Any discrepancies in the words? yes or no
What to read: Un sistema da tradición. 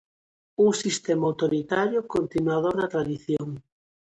yes